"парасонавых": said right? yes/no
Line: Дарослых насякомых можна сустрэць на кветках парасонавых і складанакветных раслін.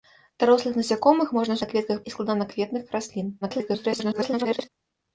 no